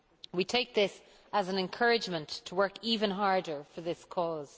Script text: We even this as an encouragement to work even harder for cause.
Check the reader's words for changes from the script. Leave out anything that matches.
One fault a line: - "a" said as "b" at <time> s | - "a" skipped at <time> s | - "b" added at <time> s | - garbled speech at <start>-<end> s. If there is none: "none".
- "even" said as "take" at 0.5 s
- "this" added at 3.8 s